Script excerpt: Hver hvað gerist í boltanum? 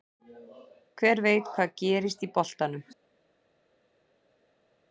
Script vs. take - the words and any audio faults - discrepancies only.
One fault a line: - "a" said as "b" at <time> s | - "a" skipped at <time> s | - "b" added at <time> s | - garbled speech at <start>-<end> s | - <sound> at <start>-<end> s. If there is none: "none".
- "veit" added at 1.3 s